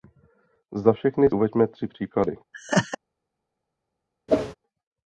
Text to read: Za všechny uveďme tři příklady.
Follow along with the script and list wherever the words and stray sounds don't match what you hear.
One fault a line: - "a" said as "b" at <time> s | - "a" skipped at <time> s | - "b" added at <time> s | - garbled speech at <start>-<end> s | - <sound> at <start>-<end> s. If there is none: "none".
- laugh at 2.5-3.0 s
- whoosh at 4.3-4.6 s